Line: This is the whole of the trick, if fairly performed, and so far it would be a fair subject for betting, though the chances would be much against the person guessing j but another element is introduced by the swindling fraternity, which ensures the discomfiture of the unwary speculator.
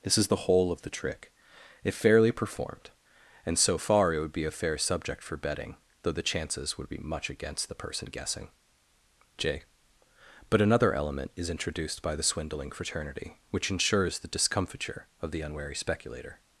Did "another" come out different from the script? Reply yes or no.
no